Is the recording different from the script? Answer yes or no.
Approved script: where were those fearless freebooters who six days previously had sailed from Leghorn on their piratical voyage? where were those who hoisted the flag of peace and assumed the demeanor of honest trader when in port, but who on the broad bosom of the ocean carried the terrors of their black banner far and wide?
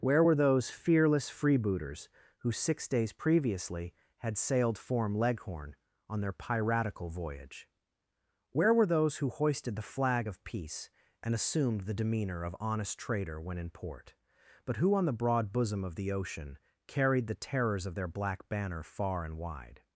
yes